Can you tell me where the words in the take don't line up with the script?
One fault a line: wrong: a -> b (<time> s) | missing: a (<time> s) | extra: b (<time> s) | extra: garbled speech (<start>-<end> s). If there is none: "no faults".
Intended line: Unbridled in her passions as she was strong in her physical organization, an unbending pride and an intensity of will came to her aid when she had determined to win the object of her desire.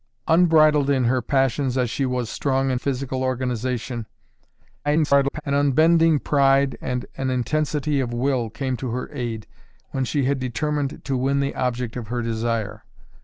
missing: her (2.8 s)
extra: garbled speech (4.8-5.4 s)